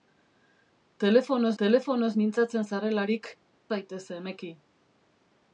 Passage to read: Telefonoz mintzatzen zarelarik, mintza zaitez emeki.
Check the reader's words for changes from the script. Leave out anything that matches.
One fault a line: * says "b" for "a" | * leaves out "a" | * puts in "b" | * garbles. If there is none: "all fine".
* puts in "telefonoz"
* leaves out "mintza"